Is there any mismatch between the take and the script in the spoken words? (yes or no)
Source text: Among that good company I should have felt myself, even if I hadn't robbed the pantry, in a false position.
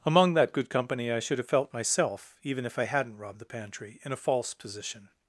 no